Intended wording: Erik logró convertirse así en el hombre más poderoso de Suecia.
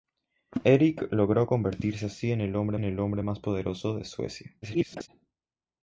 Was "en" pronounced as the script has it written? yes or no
yes